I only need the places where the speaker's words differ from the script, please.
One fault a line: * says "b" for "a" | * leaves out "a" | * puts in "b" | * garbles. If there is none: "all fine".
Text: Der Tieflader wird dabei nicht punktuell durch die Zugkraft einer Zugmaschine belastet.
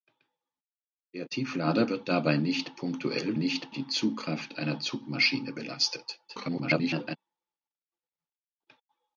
* says "nicht" for "durch"
* garbles